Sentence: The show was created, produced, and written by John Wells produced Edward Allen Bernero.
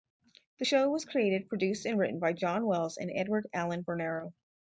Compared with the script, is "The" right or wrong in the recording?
right